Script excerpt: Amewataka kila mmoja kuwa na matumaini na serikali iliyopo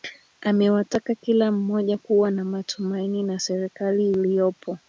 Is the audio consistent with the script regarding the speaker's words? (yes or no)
yes